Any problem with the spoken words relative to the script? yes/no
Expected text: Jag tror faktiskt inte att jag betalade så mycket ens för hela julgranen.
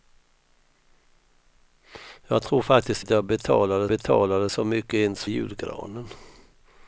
yes